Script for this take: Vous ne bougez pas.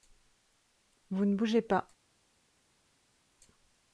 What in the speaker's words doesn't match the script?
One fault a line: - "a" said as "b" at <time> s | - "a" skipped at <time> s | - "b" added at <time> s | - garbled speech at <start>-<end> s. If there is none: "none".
none